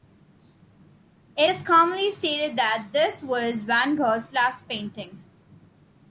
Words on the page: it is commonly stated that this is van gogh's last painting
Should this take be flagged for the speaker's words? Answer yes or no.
yes